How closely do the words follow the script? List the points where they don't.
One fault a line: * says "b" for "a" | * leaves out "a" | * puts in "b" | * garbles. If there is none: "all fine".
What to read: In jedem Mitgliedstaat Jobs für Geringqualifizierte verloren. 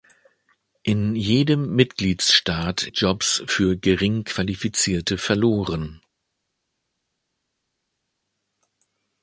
all fine